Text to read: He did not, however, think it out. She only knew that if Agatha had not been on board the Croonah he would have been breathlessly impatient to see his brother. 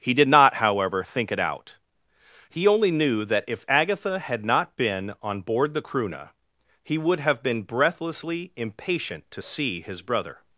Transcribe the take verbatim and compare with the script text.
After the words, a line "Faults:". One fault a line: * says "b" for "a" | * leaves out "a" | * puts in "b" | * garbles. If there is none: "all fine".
He did not, however, think it out. He only knew that if Agatha had not been on board the Croonah he would have been breathlessly impatient to see his brother.
Faults:
* says "He" for "She"